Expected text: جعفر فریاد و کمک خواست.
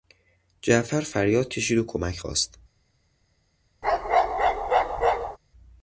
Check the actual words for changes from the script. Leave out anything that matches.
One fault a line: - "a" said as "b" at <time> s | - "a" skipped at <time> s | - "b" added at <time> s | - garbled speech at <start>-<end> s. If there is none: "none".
- "کشید" added at 1.5 s